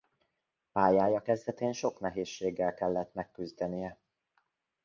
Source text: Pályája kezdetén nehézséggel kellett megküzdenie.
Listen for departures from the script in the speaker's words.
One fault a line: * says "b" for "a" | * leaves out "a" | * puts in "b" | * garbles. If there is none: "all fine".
* puts in "sok"